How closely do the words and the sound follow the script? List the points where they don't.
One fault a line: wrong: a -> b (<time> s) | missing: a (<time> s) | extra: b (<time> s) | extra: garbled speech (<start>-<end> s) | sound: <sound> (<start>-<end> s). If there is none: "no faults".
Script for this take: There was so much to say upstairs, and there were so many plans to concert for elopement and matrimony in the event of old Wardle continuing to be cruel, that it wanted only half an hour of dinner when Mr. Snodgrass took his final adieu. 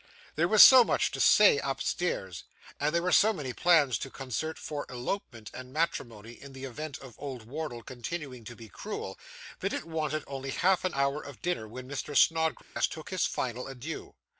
sound: dropout (12.6-12.8 s)